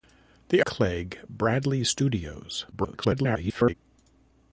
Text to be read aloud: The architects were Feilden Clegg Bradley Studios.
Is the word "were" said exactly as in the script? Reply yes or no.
no